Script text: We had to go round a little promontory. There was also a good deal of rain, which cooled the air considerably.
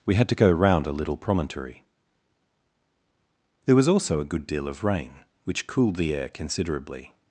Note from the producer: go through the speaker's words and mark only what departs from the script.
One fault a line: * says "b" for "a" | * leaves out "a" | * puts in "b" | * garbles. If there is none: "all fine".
all fine